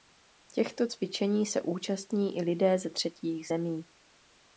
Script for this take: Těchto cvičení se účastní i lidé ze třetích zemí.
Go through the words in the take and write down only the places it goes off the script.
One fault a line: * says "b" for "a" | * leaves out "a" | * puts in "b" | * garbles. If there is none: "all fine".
all fine